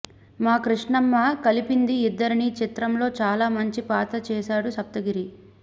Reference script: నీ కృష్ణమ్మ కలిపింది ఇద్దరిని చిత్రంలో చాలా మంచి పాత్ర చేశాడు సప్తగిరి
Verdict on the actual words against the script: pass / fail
fail